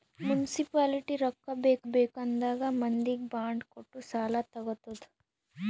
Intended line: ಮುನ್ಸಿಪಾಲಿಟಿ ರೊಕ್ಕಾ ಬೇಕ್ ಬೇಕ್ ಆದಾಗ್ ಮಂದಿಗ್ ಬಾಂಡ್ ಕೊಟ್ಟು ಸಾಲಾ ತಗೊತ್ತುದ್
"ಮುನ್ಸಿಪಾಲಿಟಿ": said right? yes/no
yes